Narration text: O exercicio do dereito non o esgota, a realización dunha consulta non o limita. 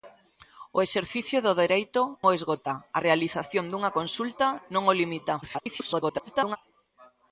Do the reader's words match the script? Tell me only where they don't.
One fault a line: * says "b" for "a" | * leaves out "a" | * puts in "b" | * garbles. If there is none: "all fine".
* leaves out "non"
* garbles